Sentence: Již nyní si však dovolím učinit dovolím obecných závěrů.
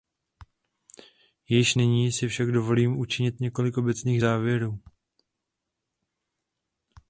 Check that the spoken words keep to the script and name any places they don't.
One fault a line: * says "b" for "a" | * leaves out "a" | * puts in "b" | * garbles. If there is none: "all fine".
* says "několik" for "dovolím"